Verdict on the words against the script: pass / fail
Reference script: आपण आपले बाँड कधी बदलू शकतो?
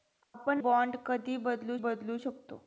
fail